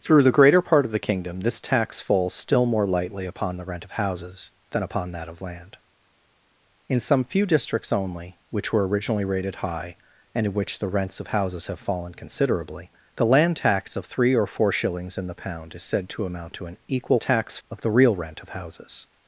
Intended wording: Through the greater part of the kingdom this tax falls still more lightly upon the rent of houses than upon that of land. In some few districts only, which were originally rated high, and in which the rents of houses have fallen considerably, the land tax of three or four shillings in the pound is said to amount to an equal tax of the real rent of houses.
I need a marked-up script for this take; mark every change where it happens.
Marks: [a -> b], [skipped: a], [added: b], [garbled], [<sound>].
Through the greater part of the kingdom this tax falls still more lightly upon the rent of houses than upon that of land. In some few districts only, which were originally rated high, and in which the rents of houses have fallen considerably, the land tax of three or four shillings in the pound is said to amount to an equal tax of the real rent of houses.